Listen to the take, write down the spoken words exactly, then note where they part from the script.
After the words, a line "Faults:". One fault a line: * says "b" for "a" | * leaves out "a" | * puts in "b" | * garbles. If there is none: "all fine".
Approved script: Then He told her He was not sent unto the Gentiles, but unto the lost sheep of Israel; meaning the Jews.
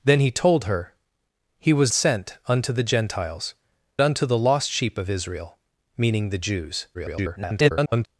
Then He told her He was sent unto the Gentiles, unto the lost sheep of Israel; meaning the Jews. [garbled]
Faults:
* leaves out "not"
* leaves out "but"
* garbles